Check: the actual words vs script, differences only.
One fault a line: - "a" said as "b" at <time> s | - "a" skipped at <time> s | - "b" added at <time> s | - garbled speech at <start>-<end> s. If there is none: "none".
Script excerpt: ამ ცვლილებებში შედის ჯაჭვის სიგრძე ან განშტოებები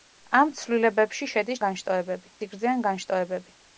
- "ჯაჭვის" said as "განშტოებები" at 1.7 s